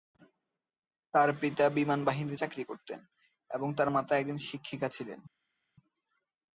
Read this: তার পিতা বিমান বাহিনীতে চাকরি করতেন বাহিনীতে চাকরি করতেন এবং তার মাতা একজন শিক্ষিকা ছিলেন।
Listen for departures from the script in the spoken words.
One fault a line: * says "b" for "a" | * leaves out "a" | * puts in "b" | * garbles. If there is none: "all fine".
* leaves out "বাহিনীতে চাকরি করতেন"